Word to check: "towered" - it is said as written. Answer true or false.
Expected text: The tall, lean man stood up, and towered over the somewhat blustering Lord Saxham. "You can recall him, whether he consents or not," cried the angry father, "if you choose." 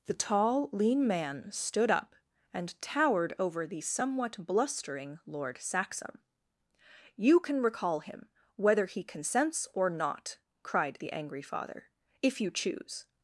true